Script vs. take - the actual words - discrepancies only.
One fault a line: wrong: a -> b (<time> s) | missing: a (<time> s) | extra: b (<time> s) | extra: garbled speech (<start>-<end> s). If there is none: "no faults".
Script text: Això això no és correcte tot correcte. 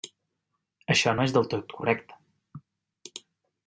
missing: això (1.1 s)
wrong: correcte -> del (1.4 s)